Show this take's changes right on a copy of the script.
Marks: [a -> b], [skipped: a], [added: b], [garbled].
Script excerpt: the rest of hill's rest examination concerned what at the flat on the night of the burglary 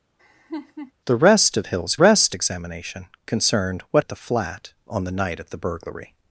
the rest of hill's rest examination concerned what at the flat on the night of the burglary